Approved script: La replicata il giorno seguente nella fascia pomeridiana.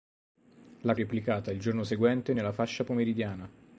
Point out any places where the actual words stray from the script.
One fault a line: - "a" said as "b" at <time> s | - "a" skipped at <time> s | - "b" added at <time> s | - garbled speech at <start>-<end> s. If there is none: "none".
none